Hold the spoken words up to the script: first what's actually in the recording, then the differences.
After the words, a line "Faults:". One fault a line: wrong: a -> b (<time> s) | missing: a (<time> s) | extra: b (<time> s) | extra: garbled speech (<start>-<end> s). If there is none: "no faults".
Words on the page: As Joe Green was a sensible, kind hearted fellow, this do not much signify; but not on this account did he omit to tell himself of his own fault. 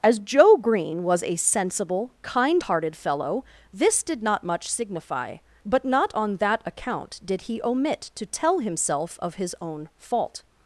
As Joe Green was a sensible, kind hearted fellow, this did not much signify; but not on that account did he omit to tell himself of his own fault.
Faults:
wrong: do -> did (4.0 s)
wrong: this -> that (6.4 s)